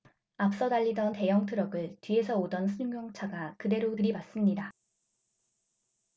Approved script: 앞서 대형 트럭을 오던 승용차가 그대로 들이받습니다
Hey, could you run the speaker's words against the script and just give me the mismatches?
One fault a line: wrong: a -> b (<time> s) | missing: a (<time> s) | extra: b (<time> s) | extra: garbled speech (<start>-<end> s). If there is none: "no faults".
extra: 달리던 (0.7 s)
extra: 뒤에서 (2.0 s)